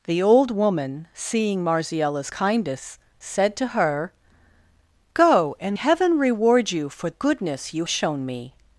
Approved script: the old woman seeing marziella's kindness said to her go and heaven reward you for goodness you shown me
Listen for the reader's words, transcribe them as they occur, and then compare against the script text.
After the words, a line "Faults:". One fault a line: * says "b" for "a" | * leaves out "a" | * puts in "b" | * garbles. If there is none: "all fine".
the old woman seeing marziella's kindness said to her go and heaven reward you for goodness you shown me
Faults:
all fine